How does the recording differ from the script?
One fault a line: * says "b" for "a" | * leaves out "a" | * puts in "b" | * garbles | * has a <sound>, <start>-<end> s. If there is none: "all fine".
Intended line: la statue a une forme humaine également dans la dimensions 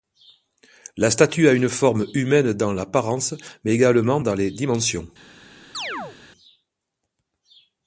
* puts in "dans l'apparence mais"
* says "les" for "la"
* has a chirp, 5.7-6.2 s